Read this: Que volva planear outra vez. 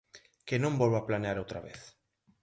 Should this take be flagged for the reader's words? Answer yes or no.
yes